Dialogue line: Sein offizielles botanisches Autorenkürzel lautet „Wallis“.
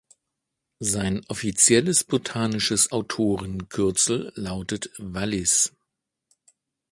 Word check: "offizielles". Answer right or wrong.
right